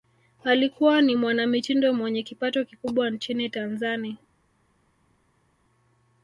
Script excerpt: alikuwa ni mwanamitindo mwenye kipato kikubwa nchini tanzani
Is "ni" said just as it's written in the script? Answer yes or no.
yes